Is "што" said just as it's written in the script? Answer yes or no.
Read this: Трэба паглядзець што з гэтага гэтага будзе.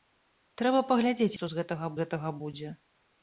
yes